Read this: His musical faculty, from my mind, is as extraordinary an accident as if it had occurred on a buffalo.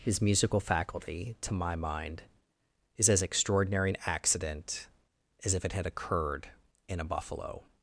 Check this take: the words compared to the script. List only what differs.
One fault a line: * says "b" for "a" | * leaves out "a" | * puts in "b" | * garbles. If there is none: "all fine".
* says "to" for "from"
* says "in" for "on"